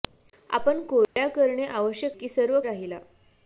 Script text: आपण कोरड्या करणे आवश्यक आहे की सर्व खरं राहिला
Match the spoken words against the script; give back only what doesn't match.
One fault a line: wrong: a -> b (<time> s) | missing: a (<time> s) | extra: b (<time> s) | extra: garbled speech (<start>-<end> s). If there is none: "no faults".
missing: आहे (2.2 s)
missing: खरं (2.6 s)